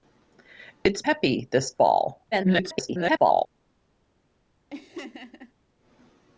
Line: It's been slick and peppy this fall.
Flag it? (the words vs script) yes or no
yes